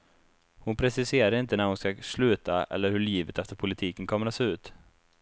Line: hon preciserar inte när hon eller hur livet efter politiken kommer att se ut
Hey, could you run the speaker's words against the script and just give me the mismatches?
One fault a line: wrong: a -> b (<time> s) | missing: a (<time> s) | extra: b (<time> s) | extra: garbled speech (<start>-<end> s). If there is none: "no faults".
extra: ska sluta (1.8 s)